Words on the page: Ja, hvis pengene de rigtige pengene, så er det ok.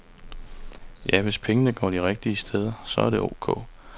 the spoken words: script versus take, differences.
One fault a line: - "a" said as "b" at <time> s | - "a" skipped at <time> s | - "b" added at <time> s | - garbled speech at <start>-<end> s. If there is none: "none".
- "går" added at 1.7 s
- "pengene" said as "steder" at 2.4 s